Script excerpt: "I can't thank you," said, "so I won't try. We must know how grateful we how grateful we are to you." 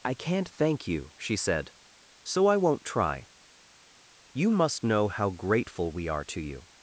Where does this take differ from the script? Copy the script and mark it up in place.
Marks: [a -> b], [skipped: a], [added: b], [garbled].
"I can't thank you," [added: she] said, "so I won't try. [We -> You] must know how grateful we [skipped: how grateful we] are to you."